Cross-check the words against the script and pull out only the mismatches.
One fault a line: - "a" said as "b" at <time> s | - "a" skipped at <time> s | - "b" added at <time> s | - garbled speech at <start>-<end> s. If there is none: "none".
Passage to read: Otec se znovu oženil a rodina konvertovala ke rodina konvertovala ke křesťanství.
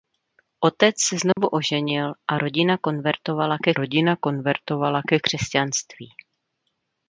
none